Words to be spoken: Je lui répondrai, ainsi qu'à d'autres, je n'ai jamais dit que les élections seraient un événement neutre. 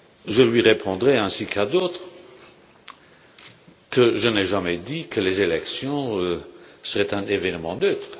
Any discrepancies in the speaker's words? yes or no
yes